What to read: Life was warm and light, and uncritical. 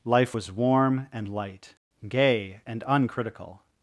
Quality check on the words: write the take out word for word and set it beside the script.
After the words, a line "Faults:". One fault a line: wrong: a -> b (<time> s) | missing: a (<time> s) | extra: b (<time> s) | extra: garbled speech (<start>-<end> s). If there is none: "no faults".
Life was warm and light, gay and uncritical.
Faults:
extra: gay (2.1 s)